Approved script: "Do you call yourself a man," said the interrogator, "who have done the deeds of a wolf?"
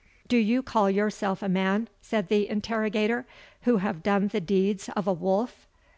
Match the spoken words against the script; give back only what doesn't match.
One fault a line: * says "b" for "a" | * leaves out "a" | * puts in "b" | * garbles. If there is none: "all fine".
all fine